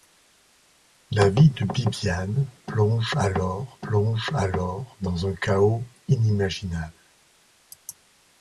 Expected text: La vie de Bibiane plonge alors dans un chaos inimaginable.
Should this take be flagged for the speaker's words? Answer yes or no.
yes